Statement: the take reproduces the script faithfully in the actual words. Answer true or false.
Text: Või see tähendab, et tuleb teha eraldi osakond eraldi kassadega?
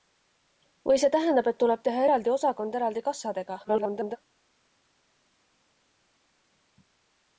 false